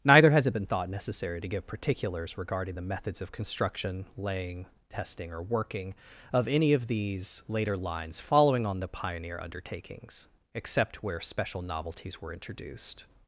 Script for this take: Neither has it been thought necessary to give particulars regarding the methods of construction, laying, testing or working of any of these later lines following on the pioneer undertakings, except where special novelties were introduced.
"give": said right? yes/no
yes